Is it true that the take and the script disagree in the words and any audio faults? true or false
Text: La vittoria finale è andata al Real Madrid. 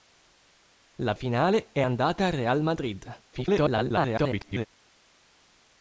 true